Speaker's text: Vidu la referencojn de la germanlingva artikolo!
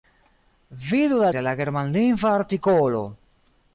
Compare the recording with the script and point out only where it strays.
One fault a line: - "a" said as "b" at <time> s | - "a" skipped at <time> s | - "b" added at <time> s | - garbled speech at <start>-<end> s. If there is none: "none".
- "referencojn" skipped at 1.3 s